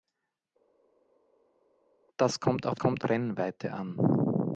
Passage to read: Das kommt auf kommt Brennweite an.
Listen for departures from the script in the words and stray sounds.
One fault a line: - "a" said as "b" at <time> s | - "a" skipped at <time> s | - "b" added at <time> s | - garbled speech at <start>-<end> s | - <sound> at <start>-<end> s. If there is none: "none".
none